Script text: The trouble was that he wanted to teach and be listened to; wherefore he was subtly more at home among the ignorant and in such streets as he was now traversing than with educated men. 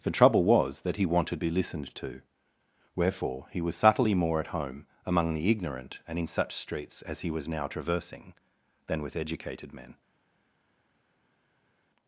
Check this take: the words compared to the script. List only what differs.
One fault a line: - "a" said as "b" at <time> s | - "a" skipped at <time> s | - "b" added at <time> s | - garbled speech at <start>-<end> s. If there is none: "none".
- "to teach and" skipped at 1.4 s